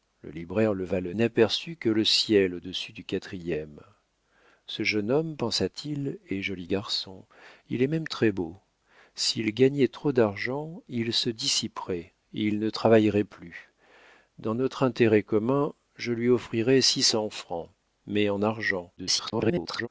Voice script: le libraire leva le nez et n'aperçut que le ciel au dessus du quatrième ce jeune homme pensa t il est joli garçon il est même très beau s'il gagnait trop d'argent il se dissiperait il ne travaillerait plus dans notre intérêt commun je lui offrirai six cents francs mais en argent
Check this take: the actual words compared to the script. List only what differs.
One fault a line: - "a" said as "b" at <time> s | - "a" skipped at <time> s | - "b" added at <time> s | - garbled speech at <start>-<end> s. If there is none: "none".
- "nez et" skipped at 1.1 s
- garbled speech at 19.0-19.9 s